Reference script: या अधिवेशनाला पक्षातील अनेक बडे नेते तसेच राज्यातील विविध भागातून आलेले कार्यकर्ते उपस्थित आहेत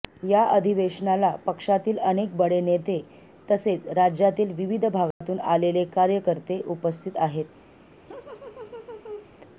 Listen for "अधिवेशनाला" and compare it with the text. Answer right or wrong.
right